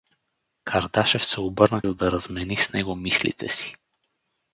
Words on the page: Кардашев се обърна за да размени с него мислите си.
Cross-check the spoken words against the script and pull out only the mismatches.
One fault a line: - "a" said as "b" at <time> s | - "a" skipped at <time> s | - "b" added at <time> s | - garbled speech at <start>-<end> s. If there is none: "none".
none